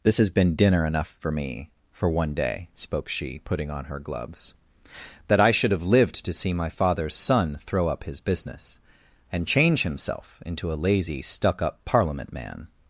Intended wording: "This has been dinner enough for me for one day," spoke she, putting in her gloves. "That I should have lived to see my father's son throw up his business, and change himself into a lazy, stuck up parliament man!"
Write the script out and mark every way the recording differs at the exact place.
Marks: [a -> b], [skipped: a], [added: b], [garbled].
"This has been dinner enough for me for one day," spoke she, putting [in -> on] her gloves. "That I should have lived to see my father's son throw up his business, and change himself into a lazy, stuck up parliament man!"